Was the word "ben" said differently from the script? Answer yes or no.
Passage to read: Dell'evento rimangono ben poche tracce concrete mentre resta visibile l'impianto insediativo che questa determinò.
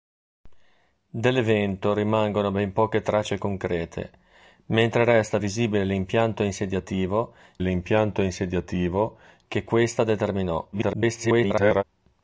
no